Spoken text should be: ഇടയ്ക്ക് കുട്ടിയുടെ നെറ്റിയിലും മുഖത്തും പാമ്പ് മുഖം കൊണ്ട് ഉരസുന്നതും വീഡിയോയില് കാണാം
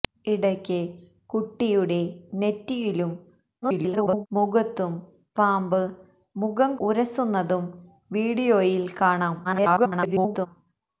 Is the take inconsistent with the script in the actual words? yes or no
yes